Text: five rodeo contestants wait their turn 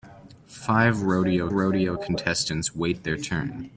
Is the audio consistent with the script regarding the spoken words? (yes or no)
no